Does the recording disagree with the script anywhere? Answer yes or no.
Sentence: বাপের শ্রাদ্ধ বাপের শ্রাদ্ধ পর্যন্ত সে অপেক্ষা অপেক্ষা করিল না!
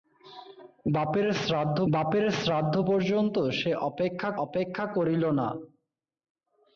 no